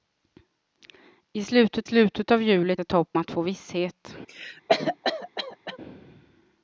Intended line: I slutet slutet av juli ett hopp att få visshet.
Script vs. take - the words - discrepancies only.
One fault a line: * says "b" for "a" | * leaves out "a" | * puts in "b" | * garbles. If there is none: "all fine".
all fine